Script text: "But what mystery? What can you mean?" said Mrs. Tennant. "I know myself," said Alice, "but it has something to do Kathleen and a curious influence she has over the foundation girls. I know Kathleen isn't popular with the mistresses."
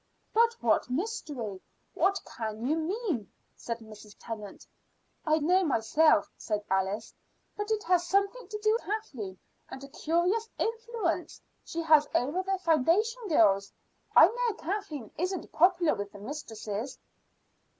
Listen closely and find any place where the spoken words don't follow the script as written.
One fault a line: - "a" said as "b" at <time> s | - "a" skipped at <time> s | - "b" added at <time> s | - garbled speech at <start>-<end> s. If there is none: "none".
none